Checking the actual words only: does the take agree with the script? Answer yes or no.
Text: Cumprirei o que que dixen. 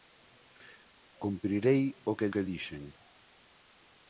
yes